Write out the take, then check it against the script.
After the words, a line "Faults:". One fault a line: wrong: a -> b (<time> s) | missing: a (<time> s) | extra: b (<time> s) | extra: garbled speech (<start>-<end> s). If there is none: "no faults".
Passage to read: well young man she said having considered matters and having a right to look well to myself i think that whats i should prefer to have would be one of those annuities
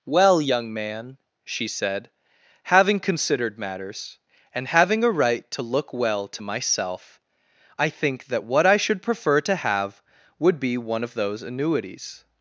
well young man she said having considered matters and having a right to look well to myself i think that what i should prefer to have would be one of those annuities
Faults:
wrong: whats -> what (8.4 s)